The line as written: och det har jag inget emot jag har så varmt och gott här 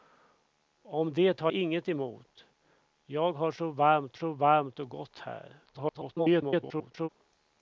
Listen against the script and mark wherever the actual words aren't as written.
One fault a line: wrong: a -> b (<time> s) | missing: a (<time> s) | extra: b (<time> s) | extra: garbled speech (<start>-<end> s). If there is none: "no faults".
missing: jag (1.5 s)
extra: så varmt (4.1 s)
extra: garbled speech (5.7-7.1 s)